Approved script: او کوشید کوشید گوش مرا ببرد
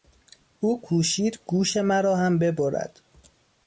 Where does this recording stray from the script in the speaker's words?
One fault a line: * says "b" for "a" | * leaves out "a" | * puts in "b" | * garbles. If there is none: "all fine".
* leaves out "کوشید"
* puts in "هم"